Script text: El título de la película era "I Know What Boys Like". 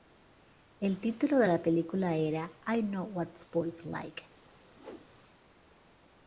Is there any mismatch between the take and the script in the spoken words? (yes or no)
no